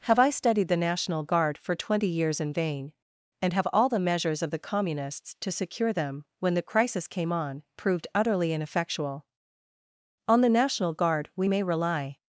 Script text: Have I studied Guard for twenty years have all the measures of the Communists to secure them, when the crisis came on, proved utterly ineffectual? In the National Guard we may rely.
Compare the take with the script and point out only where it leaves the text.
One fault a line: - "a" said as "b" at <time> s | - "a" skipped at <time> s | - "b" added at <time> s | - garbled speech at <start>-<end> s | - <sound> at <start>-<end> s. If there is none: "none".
- "the National" added at 0.7 s
- "in vain and" added at 2.4 s
- "In" said as "On" at 10.3 s